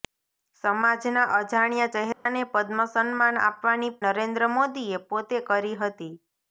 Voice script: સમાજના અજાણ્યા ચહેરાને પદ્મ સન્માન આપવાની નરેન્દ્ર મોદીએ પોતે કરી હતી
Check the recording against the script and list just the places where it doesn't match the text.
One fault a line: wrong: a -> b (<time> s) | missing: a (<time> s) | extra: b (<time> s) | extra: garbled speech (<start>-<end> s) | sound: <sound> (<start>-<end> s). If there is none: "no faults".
sound: dropout (2.1-2.3 s)